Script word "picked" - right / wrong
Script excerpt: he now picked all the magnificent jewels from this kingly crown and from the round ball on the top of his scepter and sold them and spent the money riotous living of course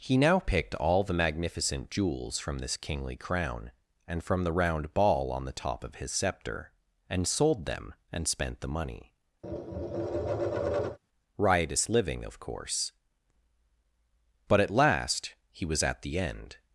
right